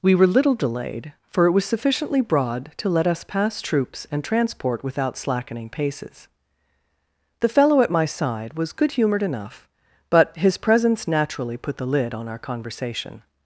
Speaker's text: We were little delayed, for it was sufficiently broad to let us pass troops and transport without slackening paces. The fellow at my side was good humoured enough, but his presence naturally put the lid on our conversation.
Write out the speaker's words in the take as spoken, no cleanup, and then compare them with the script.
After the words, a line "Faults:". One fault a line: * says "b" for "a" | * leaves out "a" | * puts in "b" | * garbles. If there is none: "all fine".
We were little delayed, for it was sufficiently broad to let us pass troops and transport without slackening paces. The fellow at my side was good humoured enough, but his presence naturally put the lid on our conversation.
Faults:
all fine